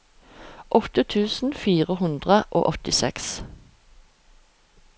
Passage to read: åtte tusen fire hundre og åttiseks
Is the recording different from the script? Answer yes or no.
no